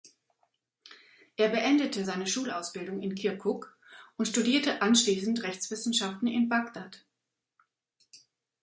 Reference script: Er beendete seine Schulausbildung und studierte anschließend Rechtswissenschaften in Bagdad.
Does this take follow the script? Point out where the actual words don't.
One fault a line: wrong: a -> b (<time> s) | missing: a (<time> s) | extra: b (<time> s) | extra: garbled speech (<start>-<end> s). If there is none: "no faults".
extra: in Kirkuk (3.0 s)